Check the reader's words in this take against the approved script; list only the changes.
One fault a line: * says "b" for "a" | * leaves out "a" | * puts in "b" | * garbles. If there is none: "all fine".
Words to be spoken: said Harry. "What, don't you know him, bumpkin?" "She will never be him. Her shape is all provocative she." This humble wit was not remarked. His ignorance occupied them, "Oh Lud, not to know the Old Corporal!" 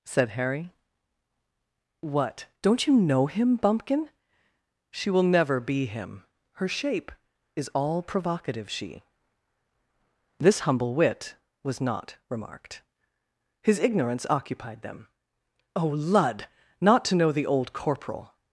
all fine